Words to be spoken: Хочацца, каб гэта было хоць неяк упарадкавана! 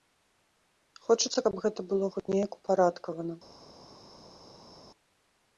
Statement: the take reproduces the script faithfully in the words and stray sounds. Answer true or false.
true